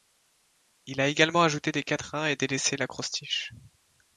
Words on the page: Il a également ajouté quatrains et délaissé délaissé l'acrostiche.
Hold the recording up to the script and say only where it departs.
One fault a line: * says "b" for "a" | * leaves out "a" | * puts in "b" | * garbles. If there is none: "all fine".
* puts in "des"
* leaves out "délaissé"